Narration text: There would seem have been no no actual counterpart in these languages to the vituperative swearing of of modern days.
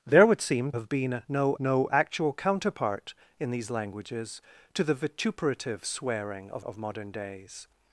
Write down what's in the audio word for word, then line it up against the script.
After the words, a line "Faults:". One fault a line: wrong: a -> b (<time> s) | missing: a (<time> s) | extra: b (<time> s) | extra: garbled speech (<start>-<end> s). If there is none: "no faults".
There would seem have been no no actual counterpart in these languages to the vituperative swearing of of modern days.
Faults:
no faults